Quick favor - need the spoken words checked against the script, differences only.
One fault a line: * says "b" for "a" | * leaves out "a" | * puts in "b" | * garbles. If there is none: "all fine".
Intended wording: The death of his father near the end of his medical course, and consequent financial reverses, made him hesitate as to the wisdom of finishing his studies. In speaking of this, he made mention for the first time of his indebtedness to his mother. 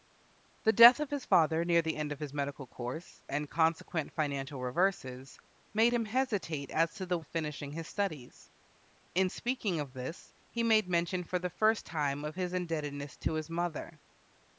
* leaves out "wisdom"